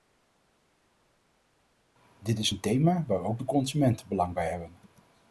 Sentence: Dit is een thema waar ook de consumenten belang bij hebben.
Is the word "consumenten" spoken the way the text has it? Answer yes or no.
yes